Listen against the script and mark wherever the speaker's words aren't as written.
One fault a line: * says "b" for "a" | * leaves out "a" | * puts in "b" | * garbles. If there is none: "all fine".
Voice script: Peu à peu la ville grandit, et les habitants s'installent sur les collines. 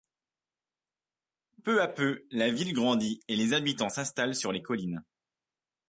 all fine